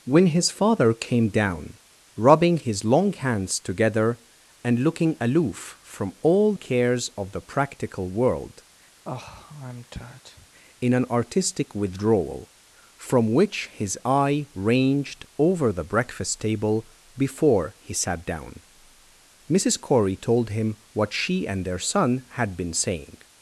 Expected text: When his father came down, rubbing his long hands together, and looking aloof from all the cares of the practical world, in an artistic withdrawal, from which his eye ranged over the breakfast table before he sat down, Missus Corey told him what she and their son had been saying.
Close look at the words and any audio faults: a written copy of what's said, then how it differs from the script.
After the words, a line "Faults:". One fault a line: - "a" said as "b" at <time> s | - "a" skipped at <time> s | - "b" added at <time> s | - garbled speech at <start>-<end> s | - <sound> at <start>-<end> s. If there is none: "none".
When his father came down, rubbing his long hands together, and looking aloof from all cares of the practical world, in an artistic withdrawal, from which his eye ranged over the breakfast table before he sat down, Missus Corey told him what she and their son had been saying.
Faults:
- "the" skipped at 6.5 s
- sigh at 9.0-10.5 s